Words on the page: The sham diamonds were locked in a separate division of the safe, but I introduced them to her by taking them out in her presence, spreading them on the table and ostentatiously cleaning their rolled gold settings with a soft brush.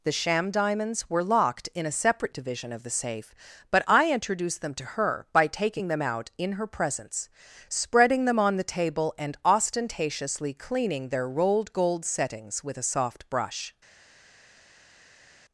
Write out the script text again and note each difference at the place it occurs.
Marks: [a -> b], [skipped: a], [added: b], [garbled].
The sham diamonds were locked in a separate division of the safe, but I introduced them to her by taking them out in her presence, spreading them on the table and ostentatiously cleaning their rolled gold settings with a soft brush.